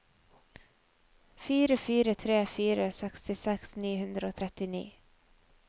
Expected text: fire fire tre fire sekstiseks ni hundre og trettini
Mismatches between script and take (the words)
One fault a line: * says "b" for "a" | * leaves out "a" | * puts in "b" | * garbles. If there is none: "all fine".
all fine